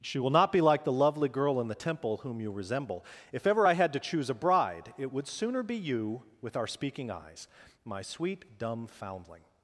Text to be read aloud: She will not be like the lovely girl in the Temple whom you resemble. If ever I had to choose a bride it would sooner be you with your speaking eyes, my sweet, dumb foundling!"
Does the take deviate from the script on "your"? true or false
true